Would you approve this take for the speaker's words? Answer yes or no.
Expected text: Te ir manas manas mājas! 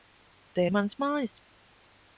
no